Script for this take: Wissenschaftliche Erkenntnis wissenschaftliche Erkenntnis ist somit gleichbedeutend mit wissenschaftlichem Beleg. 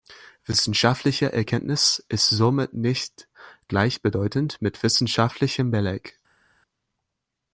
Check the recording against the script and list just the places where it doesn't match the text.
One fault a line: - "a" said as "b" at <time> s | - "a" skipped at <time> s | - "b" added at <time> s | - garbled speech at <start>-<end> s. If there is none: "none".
- "wissenschaftliche Erkenntnis" skipped at 2.0 s
- "nicht" added at 2.7 s